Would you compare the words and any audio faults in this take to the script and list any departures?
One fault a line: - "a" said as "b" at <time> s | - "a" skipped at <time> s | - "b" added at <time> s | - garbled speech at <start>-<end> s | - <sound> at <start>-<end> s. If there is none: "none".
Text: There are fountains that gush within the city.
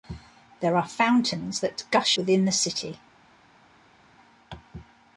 none